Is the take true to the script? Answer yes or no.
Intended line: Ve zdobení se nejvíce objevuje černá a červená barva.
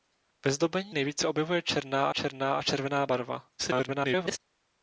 no